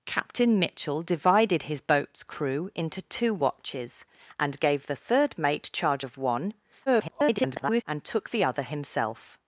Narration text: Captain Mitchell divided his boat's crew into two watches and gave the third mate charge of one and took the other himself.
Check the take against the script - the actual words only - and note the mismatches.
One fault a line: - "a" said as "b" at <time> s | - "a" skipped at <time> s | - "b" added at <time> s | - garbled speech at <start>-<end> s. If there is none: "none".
- garbled speech at 6.9-7.8 s